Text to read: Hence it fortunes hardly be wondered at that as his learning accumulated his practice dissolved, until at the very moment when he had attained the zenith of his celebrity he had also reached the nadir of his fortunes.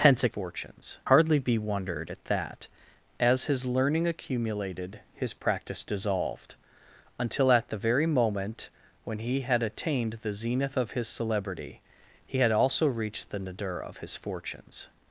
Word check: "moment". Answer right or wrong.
right